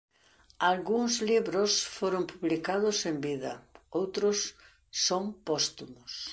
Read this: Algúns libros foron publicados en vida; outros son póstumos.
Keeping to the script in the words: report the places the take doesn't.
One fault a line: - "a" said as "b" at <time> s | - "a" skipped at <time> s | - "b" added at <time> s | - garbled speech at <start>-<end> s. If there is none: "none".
none